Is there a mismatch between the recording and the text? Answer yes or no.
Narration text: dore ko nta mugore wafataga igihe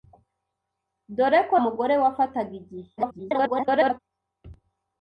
yes